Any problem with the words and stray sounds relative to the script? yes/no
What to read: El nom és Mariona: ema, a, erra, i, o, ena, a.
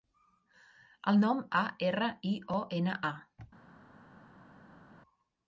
yes